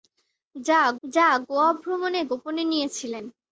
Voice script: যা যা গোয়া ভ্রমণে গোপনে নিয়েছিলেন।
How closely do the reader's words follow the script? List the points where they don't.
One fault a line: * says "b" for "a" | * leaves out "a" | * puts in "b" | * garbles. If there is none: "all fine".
all fine